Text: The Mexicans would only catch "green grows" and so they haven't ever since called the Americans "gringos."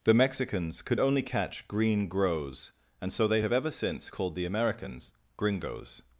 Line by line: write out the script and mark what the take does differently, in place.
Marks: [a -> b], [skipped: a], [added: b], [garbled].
The Mexicans [would -> could] only catch "green grows" and so they [haven't -> have] ever since called the Americans "gringos."